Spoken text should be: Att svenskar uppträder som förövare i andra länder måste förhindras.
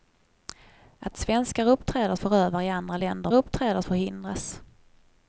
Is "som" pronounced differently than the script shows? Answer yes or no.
yes